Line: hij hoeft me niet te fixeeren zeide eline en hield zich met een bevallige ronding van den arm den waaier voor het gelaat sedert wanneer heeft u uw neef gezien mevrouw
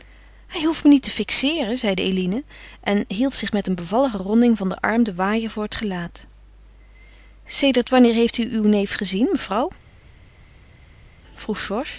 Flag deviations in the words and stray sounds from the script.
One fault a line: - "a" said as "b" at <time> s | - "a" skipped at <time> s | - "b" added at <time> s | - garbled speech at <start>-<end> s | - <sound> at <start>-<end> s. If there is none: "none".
none